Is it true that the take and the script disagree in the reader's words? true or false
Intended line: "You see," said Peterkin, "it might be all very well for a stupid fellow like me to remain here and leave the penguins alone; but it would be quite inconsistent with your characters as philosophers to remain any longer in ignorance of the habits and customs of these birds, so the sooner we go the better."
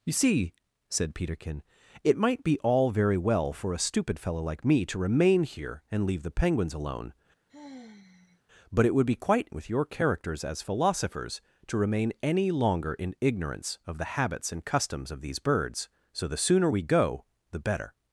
true